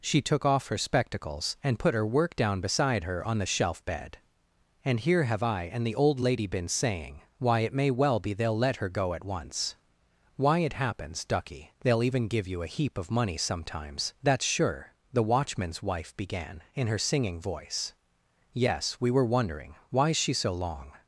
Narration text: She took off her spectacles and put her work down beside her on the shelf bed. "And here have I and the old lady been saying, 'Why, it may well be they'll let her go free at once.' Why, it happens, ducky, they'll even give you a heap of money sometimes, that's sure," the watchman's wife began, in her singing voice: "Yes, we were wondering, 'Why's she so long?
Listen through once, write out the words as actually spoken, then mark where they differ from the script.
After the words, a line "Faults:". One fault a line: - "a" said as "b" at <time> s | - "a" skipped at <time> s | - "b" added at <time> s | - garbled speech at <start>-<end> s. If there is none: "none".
She took off her spectacles and put her work down beside her on the shelf bed. "And here have I and the old lady been saying, 'Why, it may well be they'll let her go at once.' Why, it happens, ducky, they'll even give you a heap of money sometimes, that's sure," the watchman's wife began, in her singing voice: "Yes, we were wondering, 'Why's she so long?
Faults:
- "free" skipped at 9.1 s